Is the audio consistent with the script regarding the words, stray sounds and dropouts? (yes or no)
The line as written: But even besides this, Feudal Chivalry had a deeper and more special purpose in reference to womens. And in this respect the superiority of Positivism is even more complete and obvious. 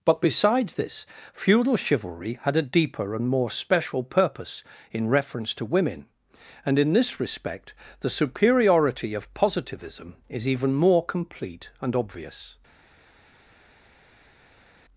no